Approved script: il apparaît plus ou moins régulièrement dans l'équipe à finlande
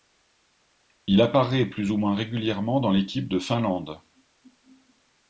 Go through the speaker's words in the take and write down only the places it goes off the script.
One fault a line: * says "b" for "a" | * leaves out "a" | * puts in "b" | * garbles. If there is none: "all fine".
* says "de" for "à"